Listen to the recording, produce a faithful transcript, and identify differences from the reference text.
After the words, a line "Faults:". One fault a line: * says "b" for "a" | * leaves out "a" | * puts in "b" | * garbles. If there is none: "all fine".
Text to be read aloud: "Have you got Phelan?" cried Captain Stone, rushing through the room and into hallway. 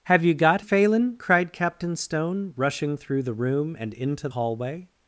"Have you got Phelan?" cried Captain Stone, rushing through the room and into hallway.
Faults:
all fine